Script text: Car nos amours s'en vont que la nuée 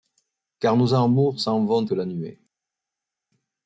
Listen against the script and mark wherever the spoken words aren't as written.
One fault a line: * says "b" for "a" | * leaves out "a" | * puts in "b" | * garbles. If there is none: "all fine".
all fine